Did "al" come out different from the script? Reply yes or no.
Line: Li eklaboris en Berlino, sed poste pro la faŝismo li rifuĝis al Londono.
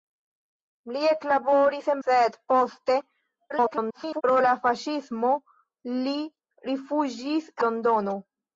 yes